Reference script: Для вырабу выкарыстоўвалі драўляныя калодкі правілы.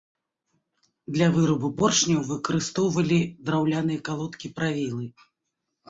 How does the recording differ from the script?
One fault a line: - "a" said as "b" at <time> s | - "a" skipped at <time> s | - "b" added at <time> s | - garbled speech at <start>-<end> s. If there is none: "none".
- "поршняў" added at 1.8 s